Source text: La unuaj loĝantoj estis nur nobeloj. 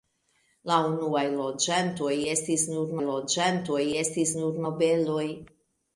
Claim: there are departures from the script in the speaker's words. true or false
true